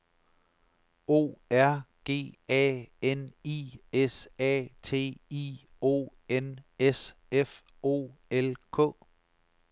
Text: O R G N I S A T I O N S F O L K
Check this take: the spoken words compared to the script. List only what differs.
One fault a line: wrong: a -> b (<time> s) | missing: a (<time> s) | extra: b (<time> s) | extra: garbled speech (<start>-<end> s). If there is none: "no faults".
extra: A (2.5 s)